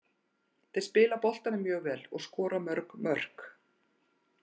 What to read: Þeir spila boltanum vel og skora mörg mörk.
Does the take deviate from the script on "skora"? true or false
false